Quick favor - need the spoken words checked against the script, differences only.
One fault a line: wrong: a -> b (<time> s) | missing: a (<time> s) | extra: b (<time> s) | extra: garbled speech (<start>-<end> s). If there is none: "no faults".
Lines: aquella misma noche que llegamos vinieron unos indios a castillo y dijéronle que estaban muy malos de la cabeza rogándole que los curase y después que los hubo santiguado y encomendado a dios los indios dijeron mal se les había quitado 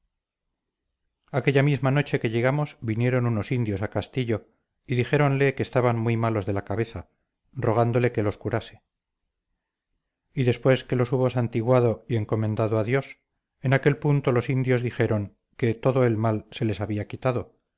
extra: en aquel punto (13.6 s)
extra: que todo el (15.6 s)